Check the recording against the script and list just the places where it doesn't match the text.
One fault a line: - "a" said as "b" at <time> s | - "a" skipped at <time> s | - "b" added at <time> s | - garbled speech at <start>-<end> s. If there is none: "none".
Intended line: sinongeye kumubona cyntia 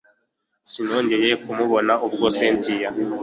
- "ubwo" added at 2.0 s